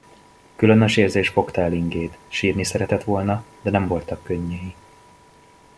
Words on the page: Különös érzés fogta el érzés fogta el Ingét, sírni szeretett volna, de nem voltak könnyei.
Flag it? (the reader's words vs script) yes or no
yes